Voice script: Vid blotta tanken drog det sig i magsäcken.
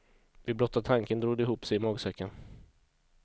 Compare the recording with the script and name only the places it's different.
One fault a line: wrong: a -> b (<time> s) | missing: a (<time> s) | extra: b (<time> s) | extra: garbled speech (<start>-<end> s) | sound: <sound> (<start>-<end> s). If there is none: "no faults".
extra: ihop (1.4 s)